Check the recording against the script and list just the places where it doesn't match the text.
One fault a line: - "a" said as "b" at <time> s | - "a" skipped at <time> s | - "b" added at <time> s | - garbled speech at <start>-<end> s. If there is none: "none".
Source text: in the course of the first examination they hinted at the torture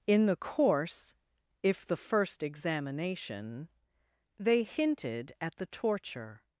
- "of" said as "if" at 1.6 s